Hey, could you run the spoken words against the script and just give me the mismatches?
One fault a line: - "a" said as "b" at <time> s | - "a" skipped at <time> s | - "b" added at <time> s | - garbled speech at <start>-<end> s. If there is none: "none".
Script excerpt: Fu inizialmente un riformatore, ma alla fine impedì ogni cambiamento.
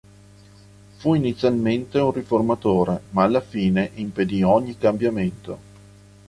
none